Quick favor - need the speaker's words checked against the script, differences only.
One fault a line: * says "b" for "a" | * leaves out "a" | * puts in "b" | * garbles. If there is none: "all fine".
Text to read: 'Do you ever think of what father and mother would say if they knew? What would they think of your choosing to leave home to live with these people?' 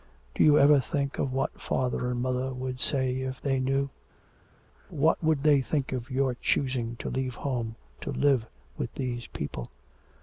all fine